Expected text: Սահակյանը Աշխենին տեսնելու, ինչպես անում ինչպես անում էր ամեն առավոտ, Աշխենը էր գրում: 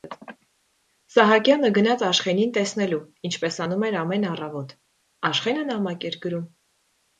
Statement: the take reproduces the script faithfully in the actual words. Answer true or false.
false